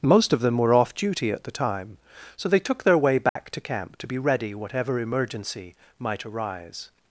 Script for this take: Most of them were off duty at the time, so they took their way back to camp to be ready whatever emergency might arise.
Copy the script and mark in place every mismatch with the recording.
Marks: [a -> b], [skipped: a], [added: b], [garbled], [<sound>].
Most of them were off duty at the time, so they took their way back [dropout] to camp to be ready whatever emergency might arise.